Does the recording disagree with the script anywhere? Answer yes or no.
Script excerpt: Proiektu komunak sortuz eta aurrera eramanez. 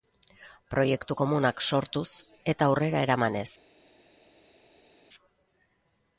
no